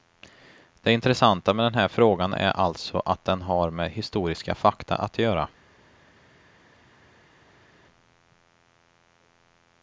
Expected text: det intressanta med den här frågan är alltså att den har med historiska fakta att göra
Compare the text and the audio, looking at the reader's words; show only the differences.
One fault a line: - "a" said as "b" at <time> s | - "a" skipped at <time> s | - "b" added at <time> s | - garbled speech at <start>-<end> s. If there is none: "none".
none